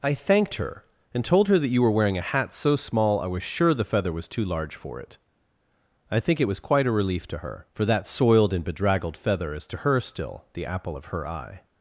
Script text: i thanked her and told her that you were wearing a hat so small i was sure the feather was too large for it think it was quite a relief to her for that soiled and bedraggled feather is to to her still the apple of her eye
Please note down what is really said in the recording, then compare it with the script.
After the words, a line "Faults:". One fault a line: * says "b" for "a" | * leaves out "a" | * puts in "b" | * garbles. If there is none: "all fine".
i thanked her and told her that you were wearing a hat so small i was sure the feather was too large for it i think it was quite a relief to her for that soiled and bedraggled feather is to her still the apple of her eye
Faults:
* puts in "i"
* leaves out "to"